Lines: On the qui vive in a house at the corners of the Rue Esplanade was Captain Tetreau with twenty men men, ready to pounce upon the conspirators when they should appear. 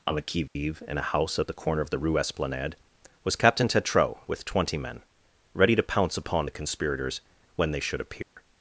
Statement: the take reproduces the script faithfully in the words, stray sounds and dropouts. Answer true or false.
false